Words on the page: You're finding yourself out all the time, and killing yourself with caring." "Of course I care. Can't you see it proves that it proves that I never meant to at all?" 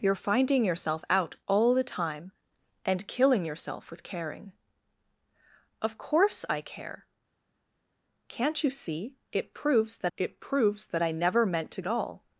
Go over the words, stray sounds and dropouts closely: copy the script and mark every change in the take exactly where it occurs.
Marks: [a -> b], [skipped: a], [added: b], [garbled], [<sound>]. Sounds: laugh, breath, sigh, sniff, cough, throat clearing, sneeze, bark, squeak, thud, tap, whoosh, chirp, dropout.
You're finding yourself out all the time, and killing yourself with caring." "Of course I care. Can't you see it proves that it proves that I never meant to at all?"